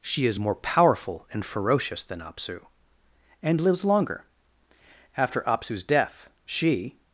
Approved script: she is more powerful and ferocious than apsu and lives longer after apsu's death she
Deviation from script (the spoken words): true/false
false